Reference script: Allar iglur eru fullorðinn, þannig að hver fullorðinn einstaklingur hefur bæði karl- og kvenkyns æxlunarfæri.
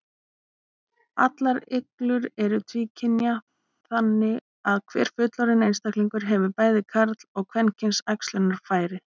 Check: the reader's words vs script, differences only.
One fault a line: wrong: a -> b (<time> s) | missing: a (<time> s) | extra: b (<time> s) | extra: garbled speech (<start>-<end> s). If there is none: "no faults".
wrong: fullorðinn -> tvíkynja (2.7 s)